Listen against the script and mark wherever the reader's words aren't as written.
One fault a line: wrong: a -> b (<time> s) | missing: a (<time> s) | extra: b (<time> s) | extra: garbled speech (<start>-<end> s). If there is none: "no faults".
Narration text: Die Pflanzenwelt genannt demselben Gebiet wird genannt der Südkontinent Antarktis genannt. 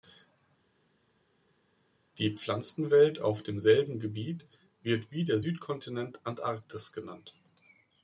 wrong: genannt -> auf (3.2 s)
wrong: genannt -> wie (5.1 s)